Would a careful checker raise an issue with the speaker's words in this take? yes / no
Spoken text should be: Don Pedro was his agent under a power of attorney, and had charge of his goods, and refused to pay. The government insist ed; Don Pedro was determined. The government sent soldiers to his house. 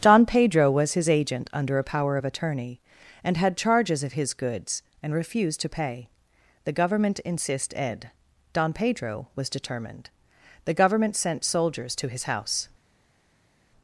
yes